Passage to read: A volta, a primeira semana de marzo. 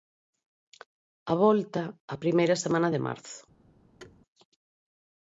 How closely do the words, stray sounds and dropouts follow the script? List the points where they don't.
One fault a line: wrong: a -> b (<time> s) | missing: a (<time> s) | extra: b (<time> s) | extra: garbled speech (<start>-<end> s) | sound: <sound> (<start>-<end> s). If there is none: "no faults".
sound: thud (4.0-4.2 s)